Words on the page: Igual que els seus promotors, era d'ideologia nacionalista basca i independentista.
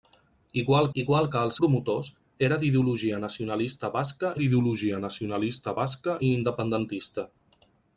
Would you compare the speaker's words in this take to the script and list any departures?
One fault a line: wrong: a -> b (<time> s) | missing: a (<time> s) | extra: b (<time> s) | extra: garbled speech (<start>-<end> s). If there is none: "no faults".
extra: igual (1.0 s)
missing: seus (1.6 s)
extra: d'ideologia nacionalista basca (4.4 s)